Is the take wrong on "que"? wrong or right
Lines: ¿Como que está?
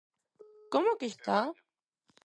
right